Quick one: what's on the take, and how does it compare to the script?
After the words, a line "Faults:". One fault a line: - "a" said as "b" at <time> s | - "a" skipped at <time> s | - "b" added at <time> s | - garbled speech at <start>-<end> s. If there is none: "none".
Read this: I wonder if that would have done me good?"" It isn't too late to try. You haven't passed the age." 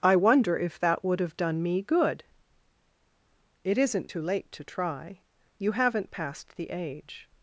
I wonder if that would have done me good?"" It isn't too late to try. You haven't passed the age."
Faults:
none